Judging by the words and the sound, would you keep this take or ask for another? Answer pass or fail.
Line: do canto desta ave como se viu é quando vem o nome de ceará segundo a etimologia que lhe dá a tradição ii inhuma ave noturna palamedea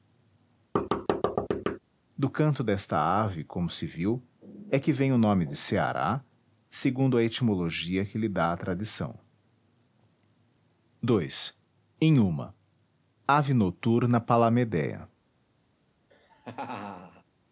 fail